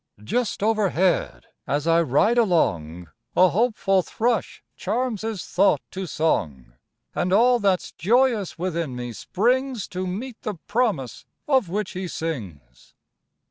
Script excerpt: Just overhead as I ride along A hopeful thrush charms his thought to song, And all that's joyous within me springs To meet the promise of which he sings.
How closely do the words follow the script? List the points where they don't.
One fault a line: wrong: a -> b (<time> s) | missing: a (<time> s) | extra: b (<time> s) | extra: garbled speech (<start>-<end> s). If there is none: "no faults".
no faults